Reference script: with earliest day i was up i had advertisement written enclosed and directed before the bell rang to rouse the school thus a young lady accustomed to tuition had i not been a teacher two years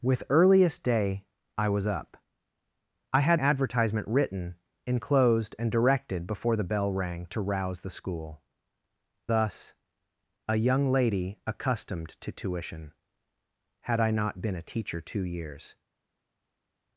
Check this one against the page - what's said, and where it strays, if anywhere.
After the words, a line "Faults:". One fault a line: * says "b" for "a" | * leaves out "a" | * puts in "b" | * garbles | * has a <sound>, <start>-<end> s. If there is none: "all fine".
with earliest day i was up i had advertisement written enclosed and directed before the bell rang to rouse the school thus a young lady accustomed to tuition had i not been a teacher two years
Faults:
all fine